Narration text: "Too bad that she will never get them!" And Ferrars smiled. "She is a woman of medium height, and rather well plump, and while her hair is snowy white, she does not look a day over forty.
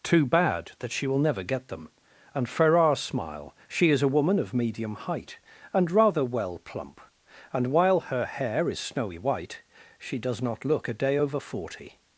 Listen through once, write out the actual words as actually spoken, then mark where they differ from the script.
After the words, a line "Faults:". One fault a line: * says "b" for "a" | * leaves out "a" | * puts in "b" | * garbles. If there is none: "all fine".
"Too bad that she will never get them!" And Ferrars smile. "She is a woman of medium height, and rather well plump, and while her hair is snowy white, she does not look a day over forty.
Faults:
* says "smile" for "smiled"